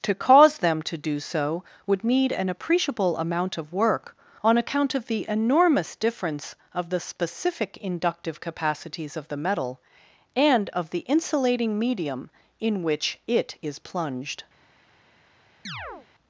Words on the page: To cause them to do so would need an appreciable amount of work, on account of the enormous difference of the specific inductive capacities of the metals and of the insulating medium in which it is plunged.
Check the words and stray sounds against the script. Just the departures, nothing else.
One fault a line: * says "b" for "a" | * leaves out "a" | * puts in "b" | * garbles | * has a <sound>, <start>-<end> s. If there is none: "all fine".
* says "metal" for "metals"
* has a chirp, 15.6-16.1 s